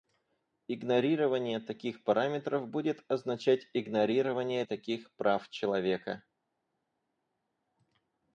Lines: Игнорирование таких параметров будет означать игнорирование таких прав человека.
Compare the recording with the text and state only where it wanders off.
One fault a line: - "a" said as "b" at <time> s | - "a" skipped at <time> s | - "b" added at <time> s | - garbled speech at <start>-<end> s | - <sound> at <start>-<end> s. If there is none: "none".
none